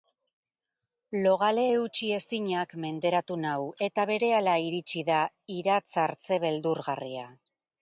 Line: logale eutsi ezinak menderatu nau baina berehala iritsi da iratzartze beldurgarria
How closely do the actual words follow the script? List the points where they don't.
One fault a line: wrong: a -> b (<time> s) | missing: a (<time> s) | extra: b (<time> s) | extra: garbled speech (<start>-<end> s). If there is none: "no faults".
wrong: baina -> eta (3.9 s)